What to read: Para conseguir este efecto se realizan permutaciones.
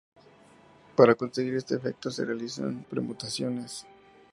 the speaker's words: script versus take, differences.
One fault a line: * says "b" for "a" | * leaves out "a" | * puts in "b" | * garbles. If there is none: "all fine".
all fine